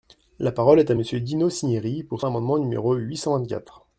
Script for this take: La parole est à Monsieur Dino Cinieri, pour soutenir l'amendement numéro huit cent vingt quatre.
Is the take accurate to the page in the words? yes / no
no